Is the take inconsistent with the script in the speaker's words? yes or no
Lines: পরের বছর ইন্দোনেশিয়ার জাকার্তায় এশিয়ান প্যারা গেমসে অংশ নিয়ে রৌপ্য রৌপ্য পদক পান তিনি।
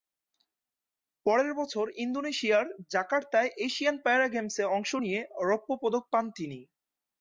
yes